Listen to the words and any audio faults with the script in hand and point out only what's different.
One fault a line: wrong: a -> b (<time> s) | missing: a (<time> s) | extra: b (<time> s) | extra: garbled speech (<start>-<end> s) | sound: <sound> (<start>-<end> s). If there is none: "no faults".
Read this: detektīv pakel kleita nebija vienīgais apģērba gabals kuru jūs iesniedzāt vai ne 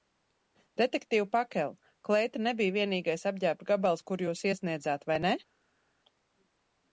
no faults